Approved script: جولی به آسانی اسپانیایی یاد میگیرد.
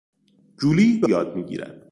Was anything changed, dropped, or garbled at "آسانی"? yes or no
yes